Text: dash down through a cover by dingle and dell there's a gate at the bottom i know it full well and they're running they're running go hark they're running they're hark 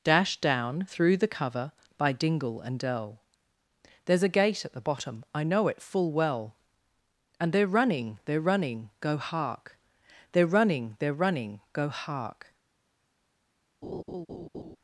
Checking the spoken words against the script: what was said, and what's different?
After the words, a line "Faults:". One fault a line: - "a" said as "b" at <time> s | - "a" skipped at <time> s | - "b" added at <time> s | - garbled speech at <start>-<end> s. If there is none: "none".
dash down through the cover by dingle and dell there's a gate at the bottom i know it full well and they're running they're running go hark they're running they're running go hark
Faults:
- "a" said as "the" at 1.2 s
- "running go" added at 11.1 s